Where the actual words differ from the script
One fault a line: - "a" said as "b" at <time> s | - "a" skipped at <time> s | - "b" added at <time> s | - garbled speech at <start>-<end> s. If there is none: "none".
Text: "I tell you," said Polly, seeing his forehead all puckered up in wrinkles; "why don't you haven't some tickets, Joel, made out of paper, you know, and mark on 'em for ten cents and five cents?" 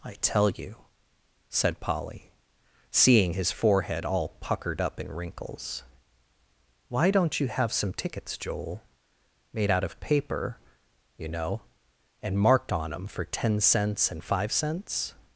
- "haven't" said as "have" at 7.5 s
- "mark" said as "marked" at 12.4 s